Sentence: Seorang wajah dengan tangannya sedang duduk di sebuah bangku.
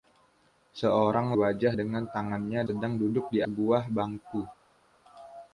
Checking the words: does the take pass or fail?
pass